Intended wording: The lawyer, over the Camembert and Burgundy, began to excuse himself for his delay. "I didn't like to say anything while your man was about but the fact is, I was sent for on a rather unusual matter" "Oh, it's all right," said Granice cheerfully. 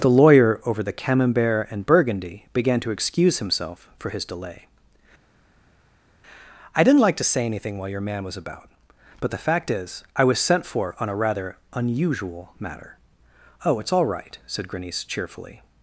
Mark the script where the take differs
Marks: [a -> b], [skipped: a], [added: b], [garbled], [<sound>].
The lawyer, over the Camembert and Burgundy, began to excuse himself for his delay. "I didn't like to say anything while your man was about but the fact is, I was sent for on a rather unusual matter" "Oh, it's all right," said Granice cheerfully.